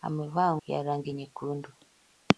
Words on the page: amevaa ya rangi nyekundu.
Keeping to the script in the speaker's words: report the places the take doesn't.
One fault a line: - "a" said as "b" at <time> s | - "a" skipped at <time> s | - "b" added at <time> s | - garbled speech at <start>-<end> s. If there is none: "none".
none